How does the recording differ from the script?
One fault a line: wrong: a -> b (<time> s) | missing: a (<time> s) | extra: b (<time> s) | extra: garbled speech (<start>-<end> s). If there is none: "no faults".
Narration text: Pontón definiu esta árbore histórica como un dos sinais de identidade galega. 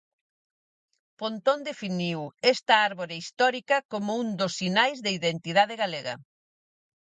no faults